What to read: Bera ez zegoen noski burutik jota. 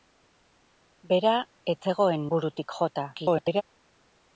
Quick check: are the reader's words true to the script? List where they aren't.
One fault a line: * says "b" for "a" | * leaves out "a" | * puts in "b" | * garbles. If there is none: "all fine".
* leaves out "noski"
* garbles